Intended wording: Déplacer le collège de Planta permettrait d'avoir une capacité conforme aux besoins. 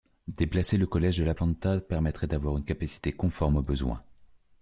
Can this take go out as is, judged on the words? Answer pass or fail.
fail